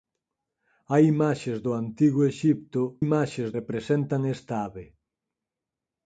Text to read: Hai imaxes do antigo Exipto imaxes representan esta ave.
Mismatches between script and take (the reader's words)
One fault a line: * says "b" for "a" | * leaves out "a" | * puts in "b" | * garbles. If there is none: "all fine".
all fine